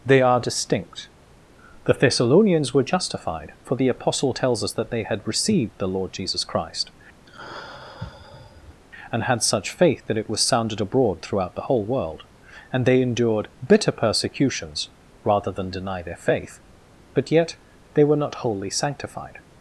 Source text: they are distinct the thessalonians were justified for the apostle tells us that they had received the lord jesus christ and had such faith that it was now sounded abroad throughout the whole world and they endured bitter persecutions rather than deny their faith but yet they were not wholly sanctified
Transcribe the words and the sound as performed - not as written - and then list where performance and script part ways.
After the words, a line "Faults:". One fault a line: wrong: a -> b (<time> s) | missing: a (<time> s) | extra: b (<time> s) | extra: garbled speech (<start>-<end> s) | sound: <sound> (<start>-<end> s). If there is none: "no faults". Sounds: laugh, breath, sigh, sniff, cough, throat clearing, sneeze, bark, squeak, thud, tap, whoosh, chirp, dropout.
they are distinct the thessalonians were justified for the apostle tells us that they had received the lord jesus christ and had such faith that it was sounded abroad throughout the whole world and they endured bitter persecutions rather than deny their faith but yet they were not wholly sanctified
Faults:
sound: sigh (7.3-8.8 s)
missing: now (10.4 s)